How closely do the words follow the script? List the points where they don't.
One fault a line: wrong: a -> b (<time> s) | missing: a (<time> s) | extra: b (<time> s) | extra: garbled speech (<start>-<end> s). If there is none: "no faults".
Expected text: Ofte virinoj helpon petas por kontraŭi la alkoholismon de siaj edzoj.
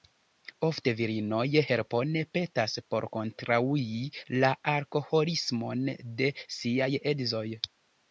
no faults